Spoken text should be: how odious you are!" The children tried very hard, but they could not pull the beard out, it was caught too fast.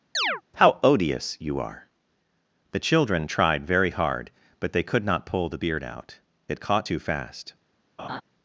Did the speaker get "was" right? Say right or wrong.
wrong